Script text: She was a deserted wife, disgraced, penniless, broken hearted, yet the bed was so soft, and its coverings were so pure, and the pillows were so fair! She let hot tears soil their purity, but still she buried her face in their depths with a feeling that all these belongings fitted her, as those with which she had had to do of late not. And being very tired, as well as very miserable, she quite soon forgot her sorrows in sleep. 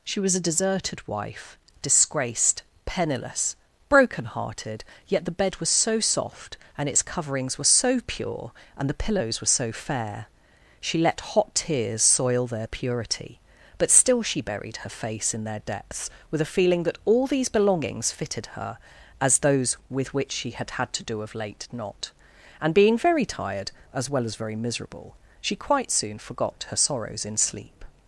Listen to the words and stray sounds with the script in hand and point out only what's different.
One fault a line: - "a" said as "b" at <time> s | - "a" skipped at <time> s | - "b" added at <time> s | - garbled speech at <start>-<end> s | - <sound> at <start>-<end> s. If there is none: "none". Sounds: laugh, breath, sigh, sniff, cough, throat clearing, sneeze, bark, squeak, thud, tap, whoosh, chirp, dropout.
none